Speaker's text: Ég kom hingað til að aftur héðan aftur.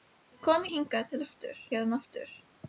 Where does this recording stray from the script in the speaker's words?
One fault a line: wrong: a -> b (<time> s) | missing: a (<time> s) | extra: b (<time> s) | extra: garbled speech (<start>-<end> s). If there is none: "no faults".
no faults